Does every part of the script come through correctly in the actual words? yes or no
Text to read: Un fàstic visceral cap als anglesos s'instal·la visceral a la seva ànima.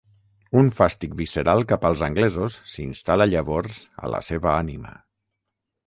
no